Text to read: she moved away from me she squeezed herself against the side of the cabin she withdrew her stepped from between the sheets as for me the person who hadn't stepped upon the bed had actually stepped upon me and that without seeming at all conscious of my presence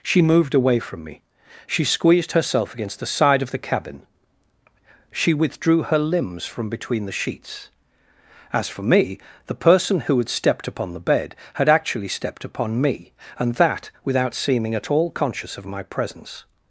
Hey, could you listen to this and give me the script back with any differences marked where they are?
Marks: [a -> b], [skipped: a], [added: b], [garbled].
she moved away from me she squeezed herself against the side of the cabin she withdrew her [stepped -> limbs] from between the sheets as for me the person who [hadn't -> had] stepped upon the bed had actually stepped upon me and that without seeming at all conscious of my presence